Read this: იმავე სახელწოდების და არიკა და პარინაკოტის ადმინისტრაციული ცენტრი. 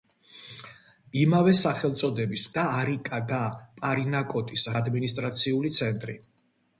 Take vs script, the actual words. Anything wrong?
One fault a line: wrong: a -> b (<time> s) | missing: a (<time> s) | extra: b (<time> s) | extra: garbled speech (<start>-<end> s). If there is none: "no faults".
no faults